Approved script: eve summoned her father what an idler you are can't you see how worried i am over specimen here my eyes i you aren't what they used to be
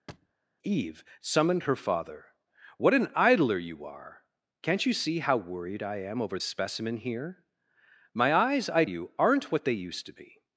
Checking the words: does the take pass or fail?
pass